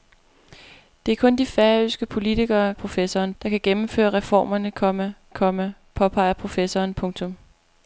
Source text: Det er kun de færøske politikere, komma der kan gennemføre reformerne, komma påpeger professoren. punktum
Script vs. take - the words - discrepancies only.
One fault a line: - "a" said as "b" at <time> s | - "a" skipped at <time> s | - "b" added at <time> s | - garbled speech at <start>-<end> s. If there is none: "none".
- "komma" said as "professoren" at 2.7 s
- "komma" added at 5.3 s